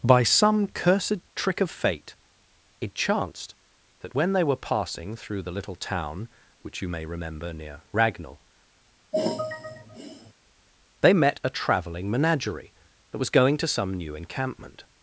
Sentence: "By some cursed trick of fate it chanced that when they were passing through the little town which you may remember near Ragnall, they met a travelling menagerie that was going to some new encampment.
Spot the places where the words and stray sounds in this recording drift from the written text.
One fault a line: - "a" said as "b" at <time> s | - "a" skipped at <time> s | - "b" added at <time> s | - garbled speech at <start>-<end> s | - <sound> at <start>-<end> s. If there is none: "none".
- sigh at 9.1-10.3 s